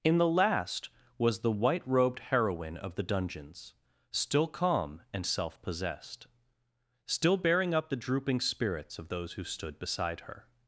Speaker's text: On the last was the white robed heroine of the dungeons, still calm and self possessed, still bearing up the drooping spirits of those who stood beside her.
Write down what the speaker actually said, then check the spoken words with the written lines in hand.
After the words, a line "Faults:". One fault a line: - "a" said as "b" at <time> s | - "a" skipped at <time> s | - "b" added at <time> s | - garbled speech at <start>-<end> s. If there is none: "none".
In the last was the white robed heroine of the dungeons, still calm and self possessed, still bearing up the drooping spirits of those who stood beside her.
Faults:
- "On" said as "In" at 0.0 s